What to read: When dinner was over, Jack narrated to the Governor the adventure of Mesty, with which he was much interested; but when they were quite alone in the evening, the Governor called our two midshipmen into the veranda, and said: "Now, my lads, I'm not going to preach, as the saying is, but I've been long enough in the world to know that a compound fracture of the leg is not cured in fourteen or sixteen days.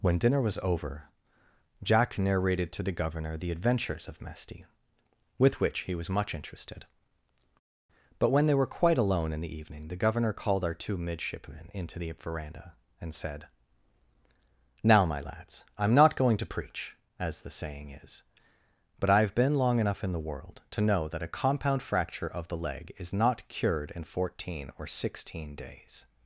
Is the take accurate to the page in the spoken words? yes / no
no